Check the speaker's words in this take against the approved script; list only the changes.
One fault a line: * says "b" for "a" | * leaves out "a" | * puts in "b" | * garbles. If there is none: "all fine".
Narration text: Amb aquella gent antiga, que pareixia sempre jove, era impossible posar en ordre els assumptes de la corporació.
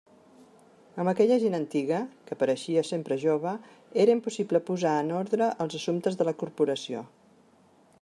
all fine